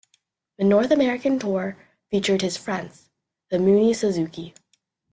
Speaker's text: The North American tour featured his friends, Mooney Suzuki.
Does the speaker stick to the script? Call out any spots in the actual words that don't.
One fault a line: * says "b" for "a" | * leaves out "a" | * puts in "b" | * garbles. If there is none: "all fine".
* puts in "The"